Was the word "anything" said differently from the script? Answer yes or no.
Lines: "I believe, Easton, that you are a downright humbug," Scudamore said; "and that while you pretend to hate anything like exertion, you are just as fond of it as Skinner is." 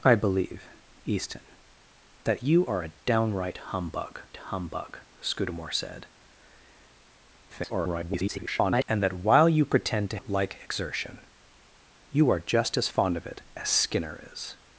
yes